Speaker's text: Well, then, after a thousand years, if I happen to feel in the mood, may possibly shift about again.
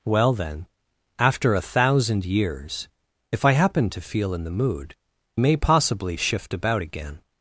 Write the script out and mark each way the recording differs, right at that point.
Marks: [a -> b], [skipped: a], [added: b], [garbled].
Well, then, after a thousand years, if I happen to feel in the mood, may possibly shift about again.